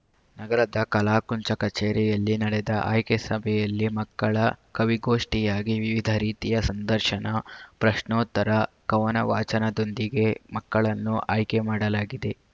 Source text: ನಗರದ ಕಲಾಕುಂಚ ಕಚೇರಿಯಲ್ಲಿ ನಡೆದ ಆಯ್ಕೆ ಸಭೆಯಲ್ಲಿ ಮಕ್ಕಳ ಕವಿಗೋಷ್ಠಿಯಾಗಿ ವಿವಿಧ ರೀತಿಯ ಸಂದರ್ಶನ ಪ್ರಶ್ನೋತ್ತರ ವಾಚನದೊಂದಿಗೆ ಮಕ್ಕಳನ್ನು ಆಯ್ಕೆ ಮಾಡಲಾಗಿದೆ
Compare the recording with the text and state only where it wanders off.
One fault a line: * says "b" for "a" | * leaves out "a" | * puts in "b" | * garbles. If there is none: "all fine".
* puts in "ಕವನ"